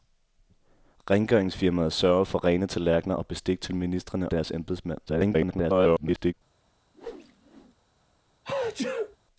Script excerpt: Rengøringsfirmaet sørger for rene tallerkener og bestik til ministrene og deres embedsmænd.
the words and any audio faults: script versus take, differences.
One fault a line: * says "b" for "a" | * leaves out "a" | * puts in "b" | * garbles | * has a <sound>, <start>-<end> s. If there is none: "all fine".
* leaves out "og"
* garbles
* has a whoosh, 6.9-7.7 s
* has a sneeze, 8.4-9.2 s